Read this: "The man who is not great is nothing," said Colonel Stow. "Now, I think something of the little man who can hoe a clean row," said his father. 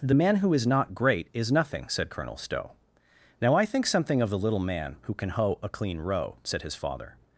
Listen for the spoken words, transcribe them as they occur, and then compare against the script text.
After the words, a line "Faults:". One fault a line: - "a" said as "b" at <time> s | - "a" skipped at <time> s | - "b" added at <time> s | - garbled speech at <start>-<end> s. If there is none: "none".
"The man who is not great is nothing," said Colonel Stow. "Now, I think something of the little man who can hoe a clean row," said his father.
Faults:
none